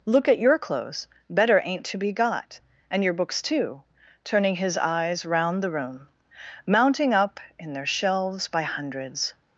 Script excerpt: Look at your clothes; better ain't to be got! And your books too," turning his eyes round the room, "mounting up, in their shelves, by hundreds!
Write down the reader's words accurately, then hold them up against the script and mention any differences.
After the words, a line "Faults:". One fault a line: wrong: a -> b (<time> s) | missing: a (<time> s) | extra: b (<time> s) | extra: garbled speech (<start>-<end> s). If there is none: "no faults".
Look at your clothes; better ain't to be got! And your books too," turning his eyes round the room, "mounting up, in their shelves, by hundreds!
Faults:
no faults